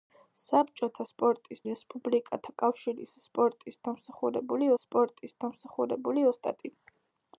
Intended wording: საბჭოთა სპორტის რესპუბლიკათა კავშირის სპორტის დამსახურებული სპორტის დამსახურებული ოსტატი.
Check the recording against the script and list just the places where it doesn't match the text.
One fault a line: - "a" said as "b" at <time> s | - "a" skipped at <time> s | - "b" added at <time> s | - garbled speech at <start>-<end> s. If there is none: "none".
none